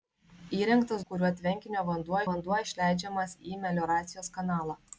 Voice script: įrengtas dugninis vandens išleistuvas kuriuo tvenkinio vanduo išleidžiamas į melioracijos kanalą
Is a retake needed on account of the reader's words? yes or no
yes